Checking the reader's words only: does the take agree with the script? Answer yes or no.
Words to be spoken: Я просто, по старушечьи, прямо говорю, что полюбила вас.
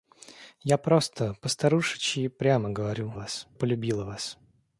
no